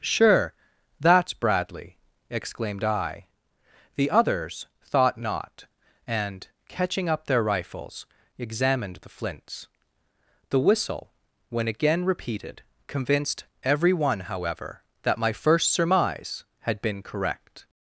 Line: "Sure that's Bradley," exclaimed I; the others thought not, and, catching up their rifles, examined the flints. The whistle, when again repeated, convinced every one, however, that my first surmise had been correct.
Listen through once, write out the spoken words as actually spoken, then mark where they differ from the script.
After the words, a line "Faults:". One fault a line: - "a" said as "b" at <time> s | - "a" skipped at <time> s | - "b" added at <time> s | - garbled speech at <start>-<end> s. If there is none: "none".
"Sure that's Bradley," exclaimed I; the others thought not, and, catching up their rifles, examined the flints. The whistle, when again repeated, convinced every one, however, that my first surmise had been correct.
Faults:
none